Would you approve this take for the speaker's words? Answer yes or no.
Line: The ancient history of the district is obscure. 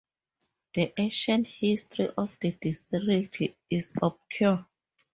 yes